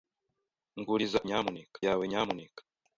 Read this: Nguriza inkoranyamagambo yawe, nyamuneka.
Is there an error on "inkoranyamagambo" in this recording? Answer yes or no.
yes